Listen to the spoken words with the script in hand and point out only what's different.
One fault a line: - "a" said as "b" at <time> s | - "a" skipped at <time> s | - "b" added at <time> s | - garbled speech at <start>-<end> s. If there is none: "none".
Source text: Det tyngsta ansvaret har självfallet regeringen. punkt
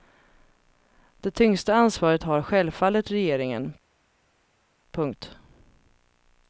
none